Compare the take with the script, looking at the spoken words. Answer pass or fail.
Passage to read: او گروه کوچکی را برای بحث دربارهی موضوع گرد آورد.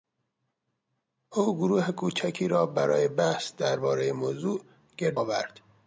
pass